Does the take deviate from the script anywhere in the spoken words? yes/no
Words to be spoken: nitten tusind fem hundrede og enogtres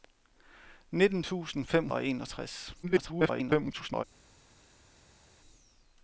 yes